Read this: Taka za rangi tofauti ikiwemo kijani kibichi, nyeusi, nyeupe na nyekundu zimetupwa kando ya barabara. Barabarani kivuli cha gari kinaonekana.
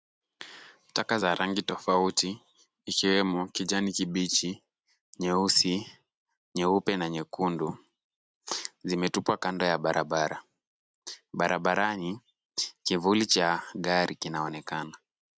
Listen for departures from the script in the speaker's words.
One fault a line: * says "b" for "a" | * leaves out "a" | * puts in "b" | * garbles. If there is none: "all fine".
all fine